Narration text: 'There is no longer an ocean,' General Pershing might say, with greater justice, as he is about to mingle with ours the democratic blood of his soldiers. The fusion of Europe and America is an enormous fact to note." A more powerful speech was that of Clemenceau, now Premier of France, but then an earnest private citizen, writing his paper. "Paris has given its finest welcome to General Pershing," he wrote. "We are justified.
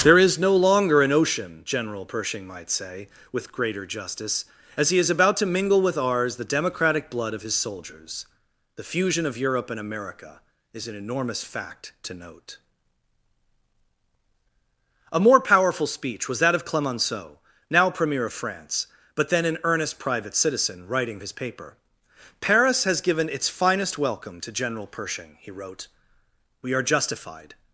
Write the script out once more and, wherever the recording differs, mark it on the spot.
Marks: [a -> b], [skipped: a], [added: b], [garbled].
'There is no longer an ocean,' General Pershing might say, with greater justice, as he is about to mingle with ours the democratic blood of his soldiers. The fusion of Europe and America is an enormous fact to note." A more powerful speech was that of Clemenceau, now Premier of France, but then an earnest private citizen, writing his paper. "Paris has given its finest welcome to General Pershing," he wrote. "We are justified.